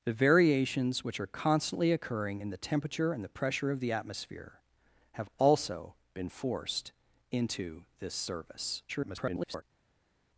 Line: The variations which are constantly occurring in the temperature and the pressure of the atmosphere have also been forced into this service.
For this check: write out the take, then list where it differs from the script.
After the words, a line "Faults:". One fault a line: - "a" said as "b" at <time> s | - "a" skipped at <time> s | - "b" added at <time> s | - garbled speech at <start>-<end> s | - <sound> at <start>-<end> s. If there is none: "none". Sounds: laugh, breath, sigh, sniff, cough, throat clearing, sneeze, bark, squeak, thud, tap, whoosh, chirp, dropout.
The variations which are constantly occurring in the temperature and the pressure of the atmosphere have also been forced into this service. [garbled]
Faults:
- garbled speech at 8.9-9.6 s